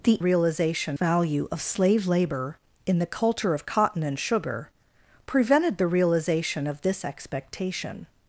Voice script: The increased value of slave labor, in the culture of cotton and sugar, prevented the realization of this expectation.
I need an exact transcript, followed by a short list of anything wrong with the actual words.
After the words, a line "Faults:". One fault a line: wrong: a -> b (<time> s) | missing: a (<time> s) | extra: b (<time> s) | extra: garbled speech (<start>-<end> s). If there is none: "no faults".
The realization value of slave labor, in the culture of cotton and sugar, prevented the realization of this expectation.
Faults:
wrong: increased -> realization (0.2 s)